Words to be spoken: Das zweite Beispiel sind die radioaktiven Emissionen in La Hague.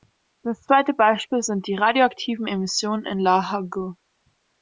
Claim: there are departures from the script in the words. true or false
false